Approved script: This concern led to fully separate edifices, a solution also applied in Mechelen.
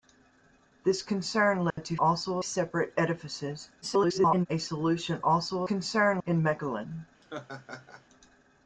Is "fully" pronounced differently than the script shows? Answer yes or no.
yes